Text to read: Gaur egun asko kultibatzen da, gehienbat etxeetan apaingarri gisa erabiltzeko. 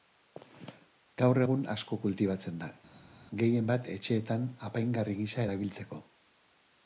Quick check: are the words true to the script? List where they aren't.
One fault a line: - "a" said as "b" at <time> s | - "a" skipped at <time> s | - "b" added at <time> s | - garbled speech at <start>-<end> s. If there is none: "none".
none